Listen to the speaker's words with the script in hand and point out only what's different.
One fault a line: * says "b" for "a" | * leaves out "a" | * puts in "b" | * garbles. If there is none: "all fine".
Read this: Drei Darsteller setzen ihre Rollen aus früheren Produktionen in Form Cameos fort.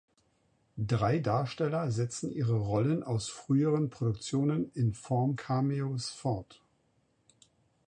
all fine